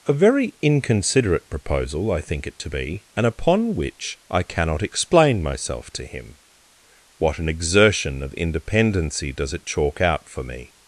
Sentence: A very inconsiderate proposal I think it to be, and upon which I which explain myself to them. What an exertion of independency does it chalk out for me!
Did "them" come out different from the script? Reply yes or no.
yes